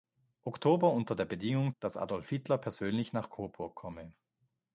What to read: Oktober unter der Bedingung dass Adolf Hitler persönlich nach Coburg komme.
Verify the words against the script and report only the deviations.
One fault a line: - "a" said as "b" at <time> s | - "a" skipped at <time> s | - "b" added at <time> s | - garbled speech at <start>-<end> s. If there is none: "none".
none